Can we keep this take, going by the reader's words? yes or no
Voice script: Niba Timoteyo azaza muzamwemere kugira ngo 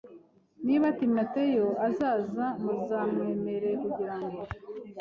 yes